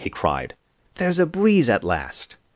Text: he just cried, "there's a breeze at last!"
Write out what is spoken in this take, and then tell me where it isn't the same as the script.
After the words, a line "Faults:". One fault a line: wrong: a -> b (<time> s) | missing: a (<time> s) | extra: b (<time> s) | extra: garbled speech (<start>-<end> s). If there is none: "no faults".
he cried, "there's a breeze at last!"
Faults:
missing: just (0.1 s)